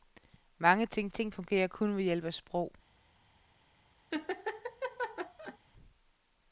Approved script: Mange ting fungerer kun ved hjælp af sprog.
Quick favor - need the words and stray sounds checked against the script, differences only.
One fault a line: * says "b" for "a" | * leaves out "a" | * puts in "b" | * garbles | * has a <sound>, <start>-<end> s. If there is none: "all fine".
* puts in "ting"
* has a laugh, 4.1-5.6 s